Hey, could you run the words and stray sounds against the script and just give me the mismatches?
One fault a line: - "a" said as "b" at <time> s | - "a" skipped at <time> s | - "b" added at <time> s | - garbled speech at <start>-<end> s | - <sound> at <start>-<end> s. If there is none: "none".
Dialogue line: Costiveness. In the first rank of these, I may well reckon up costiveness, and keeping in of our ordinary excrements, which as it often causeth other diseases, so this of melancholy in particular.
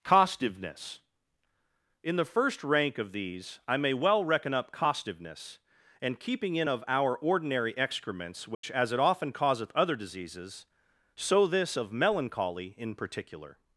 - dropout at 8.5-8.6 s